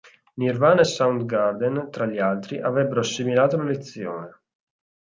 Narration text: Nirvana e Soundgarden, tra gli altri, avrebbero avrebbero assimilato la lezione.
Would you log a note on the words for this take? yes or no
yes